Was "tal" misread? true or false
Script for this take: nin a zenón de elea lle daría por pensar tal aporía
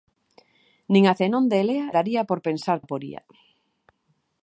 true